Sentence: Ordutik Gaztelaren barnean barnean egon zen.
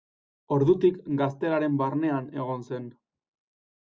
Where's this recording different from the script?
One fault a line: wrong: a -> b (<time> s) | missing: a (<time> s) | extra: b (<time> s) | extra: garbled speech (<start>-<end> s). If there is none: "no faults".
missing: barnean (2.3 s)